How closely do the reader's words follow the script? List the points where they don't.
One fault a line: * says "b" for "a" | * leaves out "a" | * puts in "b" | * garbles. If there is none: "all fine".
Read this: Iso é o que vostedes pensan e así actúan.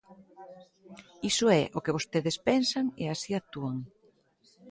all fine